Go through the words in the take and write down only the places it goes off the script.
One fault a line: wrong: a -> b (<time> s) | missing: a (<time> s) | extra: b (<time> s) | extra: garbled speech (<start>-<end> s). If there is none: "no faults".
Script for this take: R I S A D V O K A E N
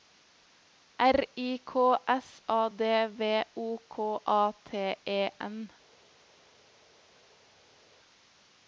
extra: K (1.6 s)
extra: T (4.6 s)